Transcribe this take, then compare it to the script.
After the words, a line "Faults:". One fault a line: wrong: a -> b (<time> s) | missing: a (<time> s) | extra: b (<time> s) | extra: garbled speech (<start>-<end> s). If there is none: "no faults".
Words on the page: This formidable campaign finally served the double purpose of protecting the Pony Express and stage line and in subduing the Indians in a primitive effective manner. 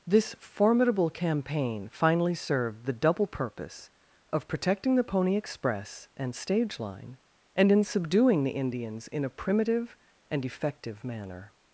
This formidable campaign finally served the double purpose of protecting the Pony Express and stage line and in subduing the Indians in a primitive and effective manner.
Faults:
extra: and (10.3 s)